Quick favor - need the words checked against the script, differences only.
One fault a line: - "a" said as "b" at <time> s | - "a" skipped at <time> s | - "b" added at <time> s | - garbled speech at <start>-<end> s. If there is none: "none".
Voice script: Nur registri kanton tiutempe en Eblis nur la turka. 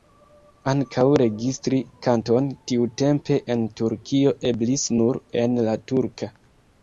- "Nur" said as "Ankaŭ" at 0.7 s
- "Turkio" added at 3.8 s
- "en" added at 5.4 s